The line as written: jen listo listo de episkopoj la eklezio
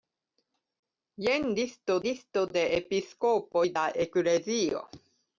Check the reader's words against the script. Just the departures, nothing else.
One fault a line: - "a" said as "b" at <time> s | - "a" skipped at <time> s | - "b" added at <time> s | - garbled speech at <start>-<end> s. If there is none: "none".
none